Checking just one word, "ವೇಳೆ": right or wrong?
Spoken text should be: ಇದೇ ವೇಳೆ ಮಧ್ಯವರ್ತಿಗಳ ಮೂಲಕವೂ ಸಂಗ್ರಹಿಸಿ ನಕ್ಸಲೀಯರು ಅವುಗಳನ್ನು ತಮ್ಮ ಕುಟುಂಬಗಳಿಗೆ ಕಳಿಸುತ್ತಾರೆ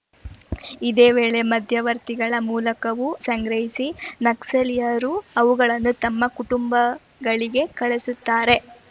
right